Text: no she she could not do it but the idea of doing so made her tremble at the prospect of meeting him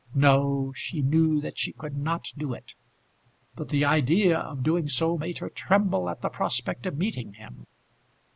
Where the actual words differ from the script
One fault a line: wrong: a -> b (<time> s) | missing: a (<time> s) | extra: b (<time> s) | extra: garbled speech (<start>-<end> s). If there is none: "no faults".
extra: knew that (1.0 s)